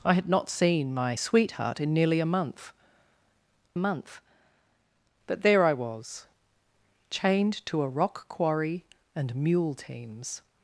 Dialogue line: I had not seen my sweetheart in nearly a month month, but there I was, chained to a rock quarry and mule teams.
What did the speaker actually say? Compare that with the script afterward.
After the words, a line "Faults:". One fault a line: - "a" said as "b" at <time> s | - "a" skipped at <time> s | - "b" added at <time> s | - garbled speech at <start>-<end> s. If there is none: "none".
I had not seen my sweetheart in nearly a month month, but there I was, chained to a rock quarry and mule teams.
Faults:
none